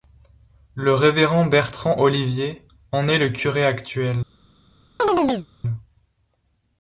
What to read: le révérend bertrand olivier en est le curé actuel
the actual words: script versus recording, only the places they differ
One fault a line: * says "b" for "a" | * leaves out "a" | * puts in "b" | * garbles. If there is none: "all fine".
all fine